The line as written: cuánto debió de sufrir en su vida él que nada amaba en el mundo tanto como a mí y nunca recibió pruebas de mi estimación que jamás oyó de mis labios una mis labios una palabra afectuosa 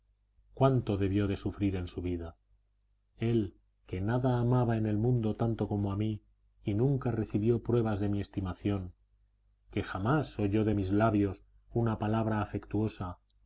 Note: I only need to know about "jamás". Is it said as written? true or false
true